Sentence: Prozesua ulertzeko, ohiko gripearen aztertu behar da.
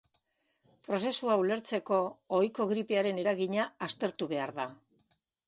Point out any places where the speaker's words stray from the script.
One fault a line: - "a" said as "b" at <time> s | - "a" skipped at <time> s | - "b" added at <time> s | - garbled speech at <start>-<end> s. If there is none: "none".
- "eragina" added at 3.2 s